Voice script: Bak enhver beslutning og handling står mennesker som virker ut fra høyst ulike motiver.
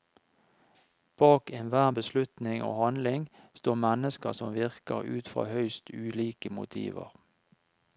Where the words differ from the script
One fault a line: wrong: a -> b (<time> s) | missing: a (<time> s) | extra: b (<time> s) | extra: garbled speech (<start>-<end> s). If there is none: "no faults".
no faults